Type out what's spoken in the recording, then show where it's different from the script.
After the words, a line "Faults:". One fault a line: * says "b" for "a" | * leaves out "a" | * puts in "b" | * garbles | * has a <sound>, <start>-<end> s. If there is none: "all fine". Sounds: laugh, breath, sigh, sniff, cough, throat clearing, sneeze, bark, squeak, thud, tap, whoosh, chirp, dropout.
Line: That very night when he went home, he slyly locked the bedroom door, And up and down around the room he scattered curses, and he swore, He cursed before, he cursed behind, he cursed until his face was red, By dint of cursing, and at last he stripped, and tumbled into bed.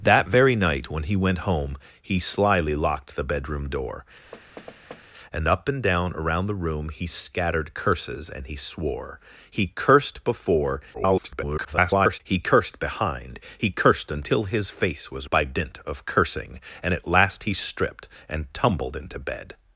That very night when he went home, he slyly locked the bedroom door, And up and down around the room he scattered curses, and he swore, He cursed before, [garbled] he cursed behind, he cursed until his face was By dint of cursing, and at last he stripped, and tumbled into bed.
Faults:
* has a thud, 4.3-5.0 s
* garbles
* leaves out "red"